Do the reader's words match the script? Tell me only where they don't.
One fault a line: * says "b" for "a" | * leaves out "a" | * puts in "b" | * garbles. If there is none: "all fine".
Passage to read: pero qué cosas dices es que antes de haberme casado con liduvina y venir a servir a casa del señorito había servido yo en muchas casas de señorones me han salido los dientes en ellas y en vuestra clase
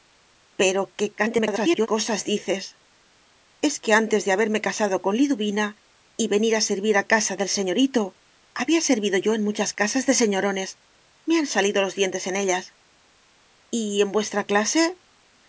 * garbles